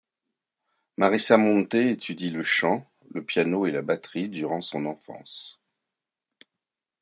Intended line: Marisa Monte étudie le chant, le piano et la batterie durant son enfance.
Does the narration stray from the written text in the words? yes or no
no